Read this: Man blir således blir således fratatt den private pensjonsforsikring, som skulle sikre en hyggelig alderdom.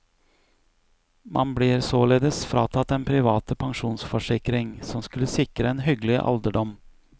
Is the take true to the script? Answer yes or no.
no